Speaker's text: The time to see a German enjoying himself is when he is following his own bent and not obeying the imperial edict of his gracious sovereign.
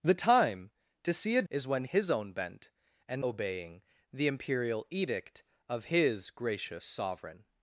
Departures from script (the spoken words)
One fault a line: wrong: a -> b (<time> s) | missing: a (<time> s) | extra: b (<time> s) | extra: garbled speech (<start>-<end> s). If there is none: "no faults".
missing: German enjoying himself (1.4 s)
missing: he is following (1.8 s)
missing: not (3.2 s)